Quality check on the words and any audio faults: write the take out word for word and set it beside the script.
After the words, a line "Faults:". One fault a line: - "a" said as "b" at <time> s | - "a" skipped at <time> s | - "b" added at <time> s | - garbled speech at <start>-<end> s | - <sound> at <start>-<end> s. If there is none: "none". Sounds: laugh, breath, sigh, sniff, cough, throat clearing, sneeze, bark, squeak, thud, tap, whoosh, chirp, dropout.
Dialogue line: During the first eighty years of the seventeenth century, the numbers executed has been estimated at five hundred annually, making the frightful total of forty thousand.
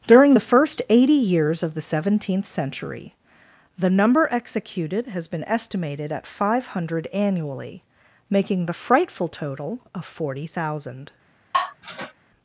During the first eighty years of the seventeenth century, the number executed has been estimated at five hundred annually, making the frightful total of forty thousand.
Faults:
- "numbers" said as "number" at 3.9 s
- sigh at 11.5-12.1 s